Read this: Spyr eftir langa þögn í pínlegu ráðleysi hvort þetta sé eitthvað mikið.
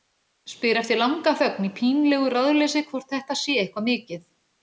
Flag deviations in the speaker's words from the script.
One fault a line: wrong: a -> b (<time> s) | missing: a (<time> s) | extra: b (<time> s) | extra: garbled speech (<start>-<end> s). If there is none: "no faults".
no faults